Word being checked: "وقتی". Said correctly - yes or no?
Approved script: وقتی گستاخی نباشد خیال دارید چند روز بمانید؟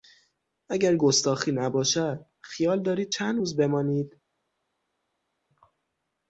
no